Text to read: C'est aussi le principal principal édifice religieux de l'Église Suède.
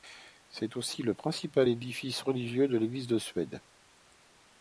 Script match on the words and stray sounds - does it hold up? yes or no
no